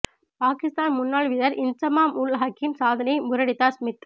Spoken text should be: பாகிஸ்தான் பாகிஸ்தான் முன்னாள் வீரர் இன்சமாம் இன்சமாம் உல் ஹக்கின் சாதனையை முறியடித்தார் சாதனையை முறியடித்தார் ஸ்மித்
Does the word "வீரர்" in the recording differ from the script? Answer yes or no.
no